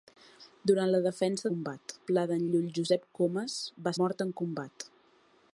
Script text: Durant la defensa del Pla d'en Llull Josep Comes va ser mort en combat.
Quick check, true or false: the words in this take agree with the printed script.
false